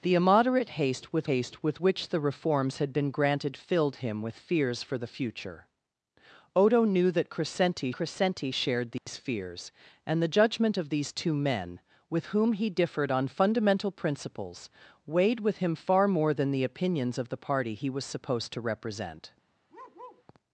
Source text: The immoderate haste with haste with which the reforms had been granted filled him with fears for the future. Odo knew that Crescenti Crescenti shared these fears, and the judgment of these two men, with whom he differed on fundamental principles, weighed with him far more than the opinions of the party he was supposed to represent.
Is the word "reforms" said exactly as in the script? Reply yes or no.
yes